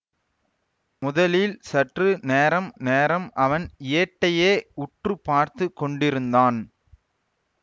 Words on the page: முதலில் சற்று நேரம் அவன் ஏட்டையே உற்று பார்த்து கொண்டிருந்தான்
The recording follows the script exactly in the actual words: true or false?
false